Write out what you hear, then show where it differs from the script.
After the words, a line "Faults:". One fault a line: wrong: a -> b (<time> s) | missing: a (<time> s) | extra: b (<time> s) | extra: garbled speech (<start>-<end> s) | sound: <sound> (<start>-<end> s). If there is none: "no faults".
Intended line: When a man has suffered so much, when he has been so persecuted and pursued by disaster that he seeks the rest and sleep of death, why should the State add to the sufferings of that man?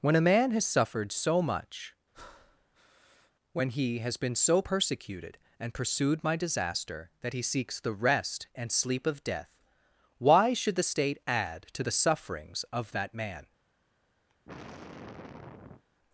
When a man has suffered so much, when he has been so persecuted and pursued my disaster that he seeks the rest and sleep of death, why should the State add to the sufferings of that man?
Faults:
sound: breath (2.1-3.3 s)
wrong: by -> my (6.2 s)
sound: sigh (14.3-15.8 s)